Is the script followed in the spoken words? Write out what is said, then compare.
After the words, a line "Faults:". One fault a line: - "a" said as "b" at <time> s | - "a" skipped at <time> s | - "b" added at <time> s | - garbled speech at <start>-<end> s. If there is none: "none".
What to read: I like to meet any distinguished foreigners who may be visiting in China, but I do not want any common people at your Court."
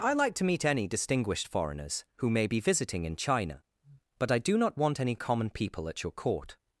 I like to meet any distinguished foreigners who may be visiting in China, but I do not want any common people at your Court."
Faults:
none